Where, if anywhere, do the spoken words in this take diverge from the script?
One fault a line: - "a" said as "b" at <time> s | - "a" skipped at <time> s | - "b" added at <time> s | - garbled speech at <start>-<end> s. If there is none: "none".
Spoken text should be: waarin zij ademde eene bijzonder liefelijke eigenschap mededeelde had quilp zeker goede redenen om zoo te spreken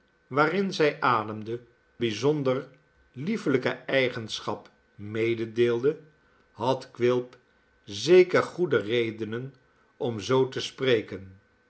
- "eene" skipped at 1.6 s